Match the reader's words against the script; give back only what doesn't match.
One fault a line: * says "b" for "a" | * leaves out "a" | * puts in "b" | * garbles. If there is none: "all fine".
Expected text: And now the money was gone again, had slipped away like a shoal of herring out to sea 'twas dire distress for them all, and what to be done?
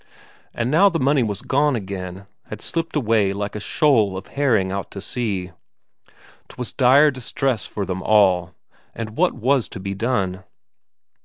* puts in "was"